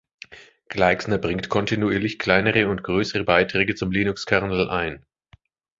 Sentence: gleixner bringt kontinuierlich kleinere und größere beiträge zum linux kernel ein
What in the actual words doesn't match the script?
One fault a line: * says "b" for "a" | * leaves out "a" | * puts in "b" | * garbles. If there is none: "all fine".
all fine